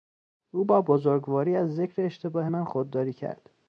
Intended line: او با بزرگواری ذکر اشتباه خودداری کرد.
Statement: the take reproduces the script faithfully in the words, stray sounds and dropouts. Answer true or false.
false